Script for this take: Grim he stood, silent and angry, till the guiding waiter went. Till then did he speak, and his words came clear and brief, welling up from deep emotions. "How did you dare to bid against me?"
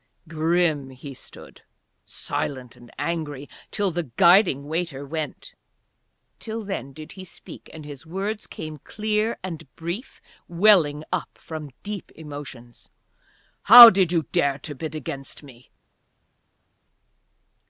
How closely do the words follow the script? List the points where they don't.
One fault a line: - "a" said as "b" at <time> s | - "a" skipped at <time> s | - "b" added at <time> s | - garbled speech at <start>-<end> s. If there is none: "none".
none